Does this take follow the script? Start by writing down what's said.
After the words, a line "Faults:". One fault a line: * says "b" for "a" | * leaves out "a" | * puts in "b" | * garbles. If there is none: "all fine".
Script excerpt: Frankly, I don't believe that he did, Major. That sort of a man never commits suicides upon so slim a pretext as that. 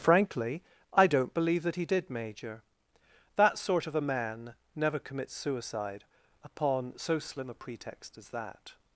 Frankly, I don't believe that he did, Major. That sort of a man never commits suicide upon so slim a pretext as that.
Faults:
* says "suicide" for "suicides"